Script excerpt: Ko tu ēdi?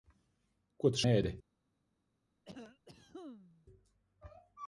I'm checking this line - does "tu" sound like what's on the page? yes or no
yes